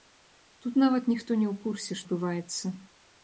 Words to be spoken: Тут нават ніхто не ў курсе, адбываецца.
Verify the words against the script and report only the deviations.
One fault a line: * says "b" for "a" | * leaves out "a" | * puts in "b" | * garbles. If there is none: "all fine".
all fine